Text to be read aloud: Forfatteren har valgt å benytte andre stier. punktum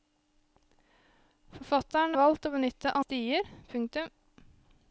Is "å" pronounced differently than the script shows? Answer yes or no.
no